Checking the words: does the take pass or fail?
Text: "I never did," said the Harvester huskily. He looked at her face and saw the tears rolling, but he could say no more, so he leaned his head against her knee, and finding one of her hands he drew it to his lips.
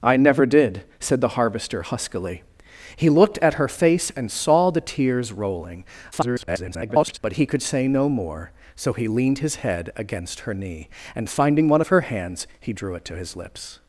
fail